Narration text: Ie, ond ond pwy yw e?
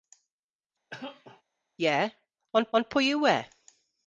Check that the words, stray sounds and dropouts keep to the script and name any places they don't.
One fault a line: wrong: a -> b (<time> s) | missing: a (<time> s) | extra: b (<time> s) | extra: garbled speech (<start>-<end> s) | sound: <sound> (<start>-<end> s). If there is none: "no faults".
sound: cough (0.9-1.4 s)